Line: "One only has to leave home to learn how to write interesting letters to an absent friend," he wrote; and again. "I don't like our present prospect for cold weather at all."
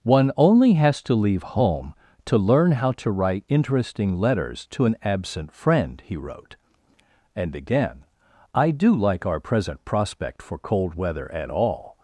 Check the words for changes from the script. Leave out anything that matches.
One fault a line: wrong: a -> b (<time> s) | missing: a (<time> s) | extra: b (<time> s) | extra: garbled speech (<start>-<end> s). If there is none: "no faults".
wrong: don't -> do (8.7 s)